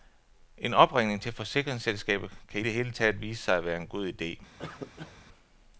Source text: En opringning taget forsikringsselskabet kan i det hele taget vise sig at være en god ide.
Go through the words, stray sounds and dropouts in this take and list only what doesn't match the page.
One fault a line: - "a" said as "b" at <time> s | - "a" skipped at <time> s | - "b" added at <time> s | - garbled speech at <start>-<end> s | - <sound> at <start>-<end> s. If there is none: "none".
- "taget" said as "til" at 1.2 s
- cough at 4.6-5.2 s